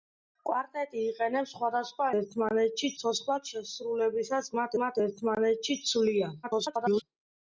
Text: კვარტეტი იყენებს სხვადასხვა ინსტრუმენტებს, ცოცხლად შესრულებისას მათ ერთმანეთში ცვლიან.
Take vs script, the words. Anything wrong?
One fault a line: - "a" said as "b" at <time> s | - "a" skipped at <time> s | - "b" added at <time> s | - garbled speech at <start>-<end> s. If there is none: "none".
- "ინსტრუმენტებს" said as "ერთმანეთში" at 2.2 s
- "მათ" added at 4.8 s
- garbled speech at 6.4-7.0 s